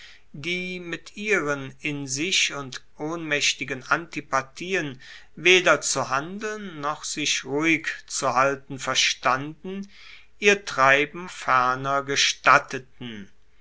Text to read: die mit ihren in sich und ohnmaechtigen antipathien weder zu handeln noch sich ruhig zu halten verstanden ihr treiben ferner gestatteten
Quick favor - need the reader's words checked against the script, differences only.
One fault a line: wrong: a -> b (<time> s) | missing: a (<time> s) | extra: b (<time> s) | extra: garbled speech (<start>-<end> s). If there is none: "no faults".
no faults